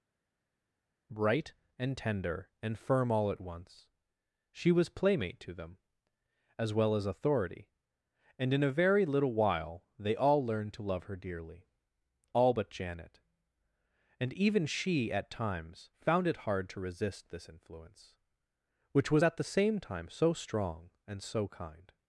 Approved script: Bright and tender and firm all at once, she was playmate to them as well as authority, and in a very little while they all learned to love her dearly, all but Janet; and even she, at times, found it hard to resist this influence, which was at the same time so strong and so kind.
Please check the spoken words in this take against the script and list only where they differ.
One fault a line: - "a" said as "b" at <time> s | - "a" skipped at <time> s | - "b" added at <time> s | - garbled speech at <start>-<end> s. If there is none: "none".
none